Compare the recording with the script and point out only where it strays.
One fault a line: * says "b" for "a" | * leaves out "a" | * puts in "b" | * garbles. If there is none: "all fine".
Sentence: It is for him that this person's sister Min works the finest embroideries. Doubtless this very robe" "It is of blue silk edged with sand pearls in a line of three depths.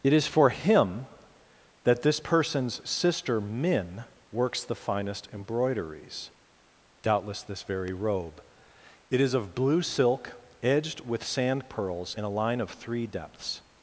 all fine